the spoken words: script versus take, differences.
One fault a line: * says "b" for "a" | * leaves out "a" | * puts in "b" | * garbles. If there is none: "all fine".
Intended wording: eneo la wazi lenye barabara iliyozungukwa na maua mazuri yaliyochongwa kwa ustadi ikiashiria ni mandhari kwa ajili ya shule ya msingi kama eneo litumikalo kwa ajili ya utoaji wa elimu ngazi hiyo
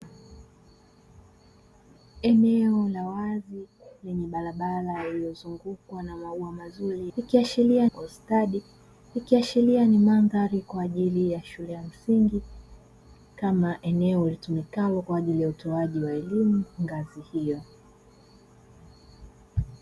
* says "ikiashiria" for "yaliyochongwa"